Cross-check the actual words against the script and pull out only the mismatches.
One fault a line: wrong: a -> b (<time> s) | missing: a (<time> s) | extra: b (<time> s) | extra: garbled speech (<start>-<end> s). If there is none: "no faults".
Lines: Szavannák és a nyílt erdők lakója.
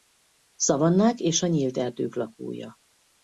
no faults